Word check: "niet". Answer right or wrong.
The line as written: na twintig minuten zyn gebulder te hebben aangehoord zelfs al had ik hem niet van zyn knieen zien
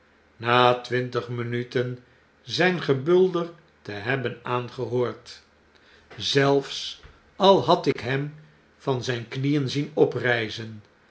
wrong